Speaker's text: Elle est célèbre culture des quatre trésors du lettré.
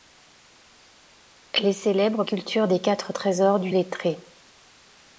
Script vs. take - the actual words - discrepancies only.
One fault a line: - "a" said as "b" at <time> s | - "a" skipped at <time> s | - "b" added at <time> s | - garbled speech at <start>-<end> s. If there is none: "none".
none